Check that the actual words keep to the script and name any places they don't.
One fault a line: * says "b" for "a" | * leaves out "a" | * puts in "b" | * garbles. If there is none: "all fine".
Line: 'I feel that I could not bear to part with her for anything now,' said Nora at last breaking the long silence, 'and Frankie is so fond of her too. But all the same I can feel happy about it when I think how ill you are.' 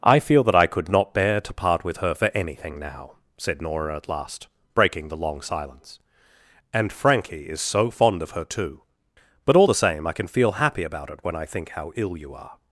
all fine